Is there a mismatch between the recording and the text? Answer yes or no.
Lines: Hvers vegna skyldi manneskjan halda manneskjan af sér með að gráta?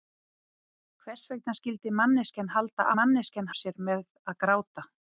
no